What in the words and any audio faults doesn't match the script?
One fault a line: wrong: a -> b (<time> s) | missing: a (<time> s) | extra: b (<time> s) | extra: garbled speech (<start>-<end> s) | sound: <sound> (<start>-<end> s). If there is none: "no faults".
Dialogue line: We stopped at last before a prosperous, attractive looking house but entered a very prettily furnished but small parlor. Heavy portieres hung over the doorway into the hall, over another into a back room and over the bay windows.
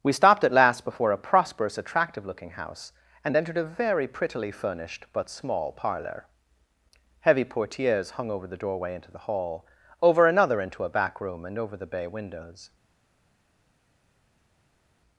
wrong: but -> and (3.2 s)